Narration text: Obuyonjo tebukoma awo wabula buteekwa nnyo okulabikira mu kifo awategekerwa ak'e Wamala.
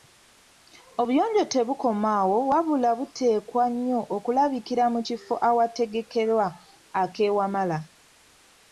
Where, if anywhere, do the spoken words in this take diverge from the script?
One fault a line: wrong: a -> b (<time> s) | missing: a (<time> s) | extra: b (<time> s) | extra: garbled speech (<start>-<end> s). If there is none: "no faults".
no faults